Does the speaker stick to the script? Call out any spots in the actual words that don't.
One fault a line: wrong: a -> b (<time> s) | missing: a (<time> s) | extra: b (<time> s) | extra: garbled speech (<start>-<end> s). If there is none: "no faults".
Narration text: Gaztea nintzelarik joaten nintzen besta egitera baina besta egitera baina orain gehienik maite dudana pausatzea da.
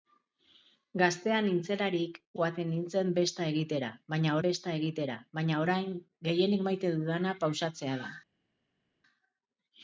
no faults